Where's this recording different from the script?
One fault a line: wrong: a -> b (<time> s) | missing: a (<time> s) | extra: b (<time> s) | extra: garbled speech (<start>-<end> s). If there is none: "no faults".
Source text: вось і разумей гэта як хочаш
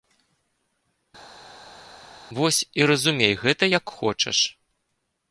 no faults